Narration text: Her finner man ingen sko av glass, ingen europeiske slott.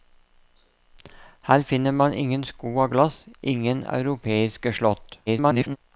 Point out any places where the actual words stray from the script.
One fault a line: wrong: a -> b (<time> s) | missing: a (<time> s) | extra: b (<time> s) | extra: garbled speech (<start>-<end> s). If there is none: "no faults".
extra: garbled speech (5.3-5.8 s)